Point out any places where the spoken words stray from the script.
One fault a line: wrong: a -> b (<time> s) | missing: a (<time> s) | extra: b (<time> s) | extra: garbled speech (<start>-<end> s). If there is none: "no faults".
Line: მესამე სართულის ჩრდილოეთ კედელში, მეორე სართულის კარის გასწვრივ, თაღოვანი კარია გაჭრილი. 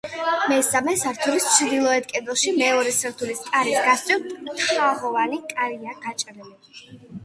no faults